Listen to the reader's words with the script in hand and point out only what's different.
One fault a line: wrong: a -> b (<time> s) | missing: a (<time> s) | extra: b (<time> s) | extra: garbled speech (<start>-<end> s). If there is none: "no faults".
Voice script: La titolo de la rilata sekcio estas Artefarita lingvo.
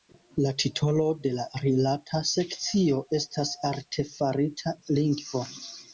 no faults